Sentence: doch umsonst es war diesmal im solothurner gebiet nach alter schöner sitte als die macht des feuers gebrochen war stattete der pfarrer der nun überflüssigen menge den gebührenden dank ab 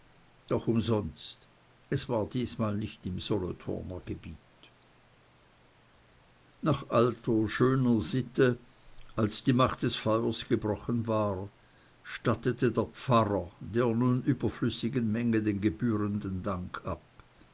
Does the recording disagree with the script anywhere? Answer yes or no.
yes